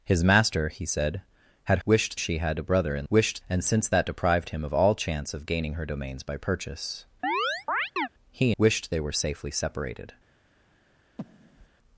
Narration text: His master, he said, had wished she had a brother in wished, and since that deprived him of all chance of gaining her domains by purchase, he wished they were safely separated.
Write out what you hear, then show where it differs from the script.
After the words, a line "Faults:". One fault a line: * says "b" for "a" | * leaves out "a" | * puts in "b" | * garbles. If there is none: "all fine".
His master, he said, had wished she had a brother in wished, and since that deprived him of all chance of gaining her domains by purchase, he wished they were safely separated.
Faults:
all fine